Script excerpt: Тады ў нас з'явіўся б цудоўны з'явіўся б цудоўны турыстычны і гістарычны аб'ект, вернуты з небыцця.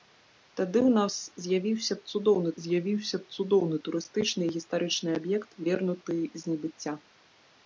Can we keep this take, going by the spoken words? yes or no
yes